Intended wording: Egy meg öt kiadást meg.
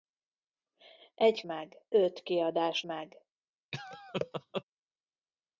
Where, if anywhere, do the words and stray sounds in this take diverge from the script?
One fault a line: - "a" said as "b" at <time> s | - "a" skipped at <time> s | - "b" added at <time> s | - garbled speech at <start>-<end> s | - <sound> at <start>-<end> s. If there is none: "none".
- laugh at 3.7-4.6 s